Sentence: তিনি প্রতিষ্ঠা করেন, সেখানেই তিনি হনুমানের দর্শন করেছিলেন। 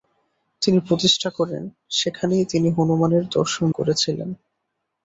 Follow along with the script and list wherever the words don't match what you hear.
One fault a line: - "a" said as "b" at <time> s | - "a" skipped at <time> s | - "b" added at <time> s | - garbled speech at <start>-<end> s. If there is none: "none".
none